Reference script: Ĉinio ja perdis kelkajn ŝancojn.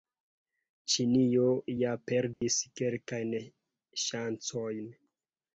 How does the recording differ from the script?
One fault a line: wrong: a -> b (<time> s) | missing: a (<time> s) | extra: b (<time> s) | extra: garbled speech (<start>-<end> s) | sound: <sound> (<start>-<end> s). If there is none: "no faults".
sound: dropout (2.3-2.4 s)